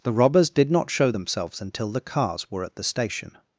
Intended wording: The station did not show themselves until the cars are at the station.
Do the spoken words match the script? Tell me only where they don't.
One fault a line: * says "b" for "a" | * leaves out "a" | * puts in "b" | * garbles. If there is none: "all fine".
* says "robbers" for "station"
* says "were" for "are"